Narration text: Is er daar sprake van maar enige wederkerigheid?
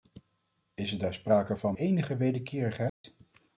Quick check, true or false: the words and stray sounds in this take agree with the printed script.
false